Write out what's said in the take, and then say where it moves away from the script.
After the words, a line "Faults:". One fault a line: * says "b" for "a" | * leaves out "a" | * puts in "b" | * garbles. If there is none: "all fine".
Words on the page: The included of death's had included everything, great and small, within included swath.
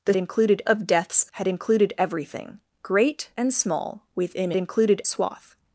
The included of death's had included everything, great and small, within included swath.
Faults:
all fine